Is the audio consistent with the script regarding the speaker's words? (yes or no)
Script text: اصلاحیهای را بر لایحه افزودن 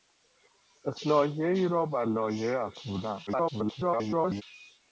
no